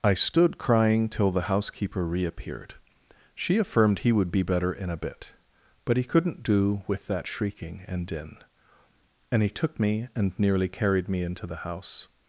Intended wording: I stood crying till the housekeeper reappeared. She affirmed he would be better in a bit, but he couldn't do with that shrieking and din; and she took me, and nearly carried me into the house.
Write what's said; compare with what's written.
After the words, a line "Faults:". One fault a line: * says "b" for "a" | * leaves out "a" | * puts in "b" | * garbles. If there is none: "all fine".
I stood crying till the housekeeper reappeared. She affirmed he would be better in a bit, but he couldn't do with that shrieking and din; and he took me, and nearly carried me into the house.
Faults:
* says "he" for "she"